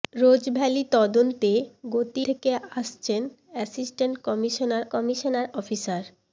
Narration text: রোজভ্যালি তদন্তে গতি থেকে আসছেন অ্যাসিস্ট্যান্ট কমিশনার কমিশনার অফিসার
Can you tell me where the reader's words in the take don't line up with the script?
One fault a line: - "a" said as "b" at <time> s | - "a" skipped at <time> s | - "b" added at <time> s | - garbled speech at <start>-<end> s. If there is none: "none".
none